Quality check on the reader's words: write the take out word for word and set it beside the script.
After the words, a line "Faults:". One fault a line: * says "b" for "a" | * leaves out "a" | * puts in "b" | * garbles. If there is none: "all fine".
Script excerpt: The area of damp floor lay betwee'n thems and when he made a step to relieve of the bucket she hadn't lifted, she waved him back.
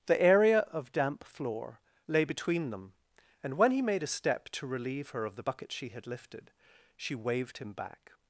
The area of damp floor lay betwee'n them and when he made a step to relieve her of the bucket she had lifted, she waved him back.
Faults:
* says "them" for "thems"
* puts in "her"
* says "had" for "hadn't"